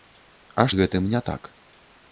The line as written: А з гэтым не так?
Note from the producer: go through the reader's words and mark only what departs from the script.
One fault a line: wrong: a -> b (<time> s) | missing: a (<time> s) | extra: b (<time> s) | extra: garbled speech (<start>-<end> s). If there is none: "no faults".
no faults